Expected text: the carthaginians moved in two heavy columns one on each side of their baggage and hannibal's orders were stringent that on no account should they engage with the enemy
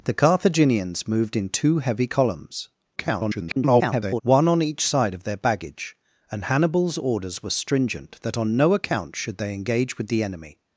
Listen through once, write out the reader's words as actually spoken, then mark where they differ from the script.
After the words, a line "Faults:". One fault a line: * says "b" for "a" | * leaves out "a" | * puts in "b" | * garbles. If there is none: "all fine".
the carthaginians moved in two heavy columns [garbled] one on each side of their baggage and hannibal's orders were stringent that on no account should they engage with the enemy
Faults:
* garbles